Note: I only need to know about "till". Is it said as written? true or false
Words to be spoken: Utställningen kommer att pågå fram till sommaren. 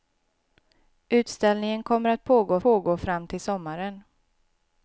true